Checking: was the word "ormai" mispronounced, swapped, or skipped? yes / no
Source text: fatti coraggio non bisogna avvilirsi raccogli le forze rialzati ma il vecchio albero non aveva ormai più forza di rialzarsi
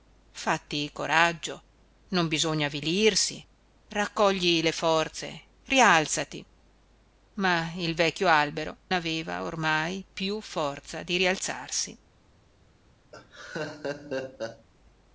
no